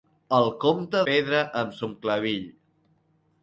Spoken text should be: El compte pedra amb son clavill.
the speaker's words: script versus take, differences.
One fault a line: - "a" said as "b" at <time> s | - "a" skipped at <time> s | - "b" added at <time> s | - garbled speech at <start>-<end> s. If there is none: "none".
none